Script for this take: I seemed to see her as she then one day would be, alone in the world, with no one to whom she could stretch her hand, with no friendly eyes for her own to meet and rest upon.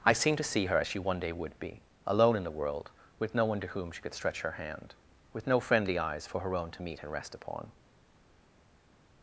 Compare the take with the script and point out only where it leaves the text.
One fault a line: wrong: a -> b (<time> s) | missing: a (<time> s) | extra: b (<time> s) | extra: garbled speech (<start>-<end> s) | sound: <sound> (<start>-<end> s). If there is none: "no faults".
missing: then (1.0 s)